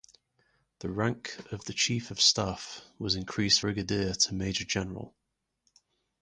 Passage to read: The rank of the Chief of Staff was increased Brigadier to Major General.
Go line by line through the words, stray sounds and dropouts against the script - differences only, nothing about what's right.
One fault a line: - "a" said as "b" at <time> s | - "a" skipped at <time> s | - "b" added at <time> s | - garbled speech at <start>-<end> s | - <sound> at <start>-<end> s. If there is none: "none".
none